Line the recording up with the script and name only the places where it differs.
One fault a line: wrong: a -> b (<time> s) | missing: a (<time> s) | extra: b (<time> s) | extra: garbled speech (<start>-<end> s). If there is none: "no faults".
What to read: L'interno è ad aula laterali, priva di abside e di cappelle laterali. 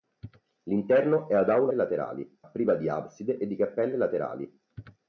no faults